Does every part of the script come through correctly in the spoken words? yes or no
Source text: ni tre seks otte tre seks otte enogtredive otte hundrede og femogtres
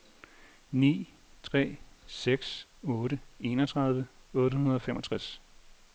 no